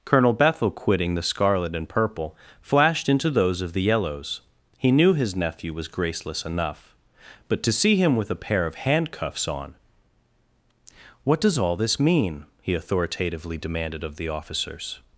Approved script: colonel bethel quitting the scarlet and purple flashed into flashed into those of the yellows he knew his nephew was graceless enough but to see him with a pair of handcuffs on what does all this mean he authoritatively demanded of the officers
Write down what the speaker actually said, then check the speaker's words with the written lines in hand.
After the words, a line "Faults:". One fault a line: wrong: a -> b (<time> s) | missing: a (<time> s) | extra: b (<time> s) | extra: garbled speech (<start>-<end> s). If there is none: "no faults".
colonel bethel quitting the scarlet and purple flashed into those of the yellows he knew his nephew was graceless enough but to see him with a pair of handcuffs on what does all this mean he authoritatively demanded of the officers
Faults:
missing: flashed into (3.3 s)